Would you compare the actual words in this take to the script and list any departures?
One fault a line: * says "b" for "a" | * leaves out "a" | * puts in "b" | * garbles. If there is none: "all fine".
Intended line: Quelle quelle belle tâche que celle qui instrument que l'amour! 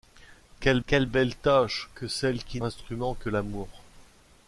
all fine